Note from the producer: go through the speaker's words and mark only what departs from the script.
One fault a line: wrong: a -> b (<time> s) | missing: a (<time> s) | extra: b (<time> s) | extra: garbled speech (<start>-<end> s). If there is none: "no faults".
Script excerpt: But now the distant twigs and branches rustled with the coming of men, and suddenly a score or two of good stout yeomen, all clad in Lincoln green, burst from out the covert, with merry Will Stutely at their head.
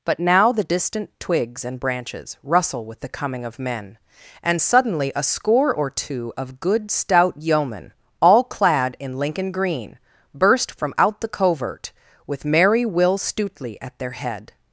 wrong: rustled -> rustle (2.4 s)